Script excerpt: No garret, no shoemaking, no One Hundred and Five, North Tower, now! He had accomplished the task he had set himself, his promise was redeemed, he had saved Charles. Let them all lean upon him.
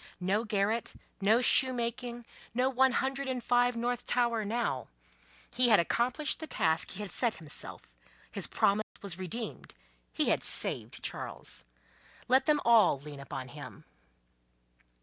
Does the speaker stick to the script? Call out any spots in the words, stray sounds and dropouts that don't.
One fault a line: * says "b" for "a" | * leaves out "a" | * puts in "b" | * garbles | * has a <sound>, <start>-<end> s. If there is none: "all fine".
* has a dropout, 8.8-9.0 s